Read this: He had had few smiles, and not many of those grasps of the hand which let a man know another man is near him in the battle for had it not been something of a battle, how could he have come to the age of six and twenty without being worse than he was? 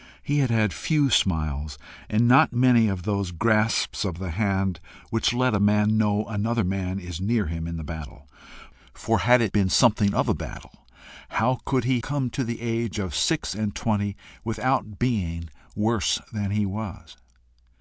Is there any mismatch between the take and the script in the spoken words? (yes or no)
yes